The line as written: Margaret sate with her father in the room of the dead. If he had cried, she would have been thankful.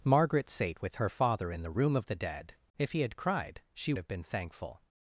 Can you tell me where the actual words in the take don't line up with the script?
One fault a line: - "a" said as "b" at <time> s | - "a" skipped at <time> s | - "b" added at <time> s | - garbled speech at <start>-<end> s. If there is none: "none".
- "would" skipped at 3.9 s